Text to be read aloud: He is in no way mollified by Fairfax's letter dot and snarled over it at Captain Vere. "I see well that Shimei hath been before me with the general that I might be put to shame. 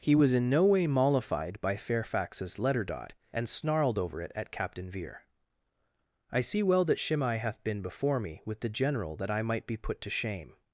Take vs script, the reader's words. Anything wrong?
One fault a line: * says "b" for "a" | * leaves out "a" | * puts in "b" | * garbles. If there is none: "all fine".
* says "was" for "is"